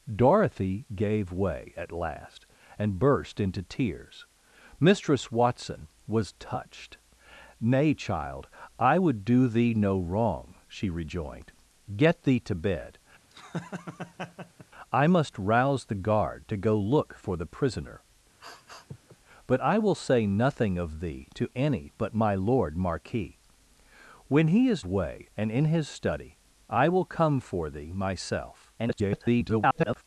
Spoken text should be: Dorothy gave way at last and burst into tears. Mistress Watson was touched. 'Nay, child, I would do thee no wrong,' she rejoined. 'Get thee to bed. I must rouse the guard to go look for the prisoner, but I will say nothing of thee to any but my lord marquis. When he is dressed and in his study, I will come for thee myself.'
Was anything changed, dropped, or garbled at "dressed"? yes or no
yes